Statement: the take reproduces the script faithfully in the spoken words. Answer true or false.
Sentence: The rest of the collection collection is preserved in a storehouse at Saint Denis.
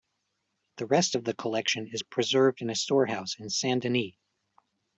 false